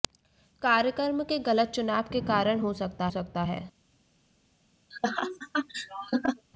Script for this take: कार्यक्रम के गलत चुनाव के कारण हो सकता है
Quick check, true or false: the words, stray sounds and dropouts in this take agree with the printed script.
false